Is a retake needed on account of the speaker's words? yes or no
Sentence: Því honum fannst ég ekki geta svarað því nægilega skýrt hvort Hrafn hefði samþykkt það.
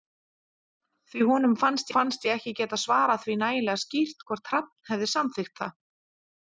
yes